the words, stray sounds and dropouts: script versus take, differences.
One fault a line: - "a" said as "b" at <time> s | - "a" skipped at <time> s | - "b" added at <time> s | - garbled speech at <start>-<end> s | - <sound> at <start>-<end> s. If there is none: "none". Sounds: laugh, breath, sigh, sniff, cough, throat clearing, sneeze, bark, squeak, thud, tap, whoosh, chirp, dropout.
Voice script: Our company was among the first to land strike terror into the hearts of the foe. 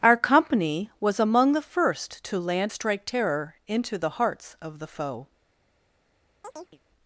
- chirp at 6.4-6.8 s